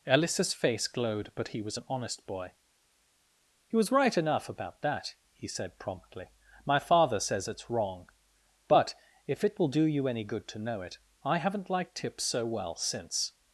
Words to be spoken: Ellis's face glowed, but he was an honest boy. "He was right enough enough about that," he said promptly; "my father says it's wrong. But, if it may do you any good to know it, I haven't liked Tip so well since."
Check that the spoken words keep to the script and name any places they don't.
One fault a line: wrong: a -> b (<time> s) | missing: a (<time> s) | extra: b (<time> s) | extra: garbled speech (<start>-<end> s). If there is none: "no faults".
missing: enough (4.5 s)
wrong: may -> will (9.6 s)